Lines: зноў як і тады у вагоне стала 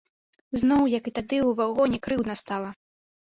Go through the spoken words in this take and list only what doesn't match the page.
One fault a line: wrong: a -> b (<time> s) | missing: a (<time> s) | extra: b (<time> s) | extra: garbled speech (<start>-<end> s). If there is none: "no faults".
extra: крыўдна (2.1 s)